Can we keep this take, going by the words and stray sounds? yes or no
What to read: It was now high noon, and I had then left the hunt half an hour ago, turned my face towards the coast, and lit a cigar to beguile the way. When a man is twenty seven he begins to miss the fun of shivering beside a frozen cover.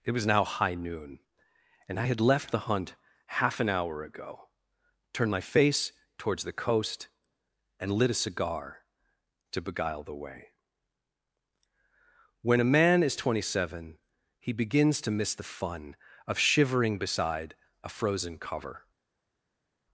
no